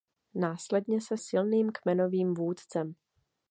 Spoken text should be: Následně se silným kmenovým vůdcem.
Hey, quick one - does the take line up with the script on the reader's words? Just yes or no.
yes